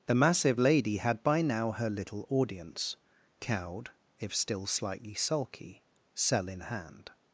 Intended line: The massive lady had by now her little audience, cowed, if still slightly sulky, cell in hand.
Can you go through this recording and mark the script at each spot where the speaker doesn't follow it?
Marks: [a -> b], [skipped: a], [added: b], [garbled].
The massive lady had by now her little audience, cowed, if still slightly sulky, cell in hand.